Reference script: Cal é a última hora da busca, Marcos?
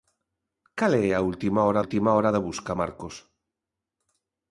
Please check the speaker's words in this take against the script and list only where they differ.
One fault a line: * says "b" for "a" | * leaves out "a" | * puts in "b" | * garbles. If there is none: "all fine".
* puts in "última hora"